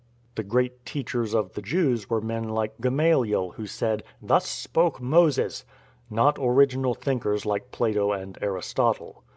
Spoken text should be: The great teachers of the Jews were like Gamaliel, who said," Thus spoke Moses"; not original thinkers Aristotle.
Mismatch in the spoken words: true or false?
true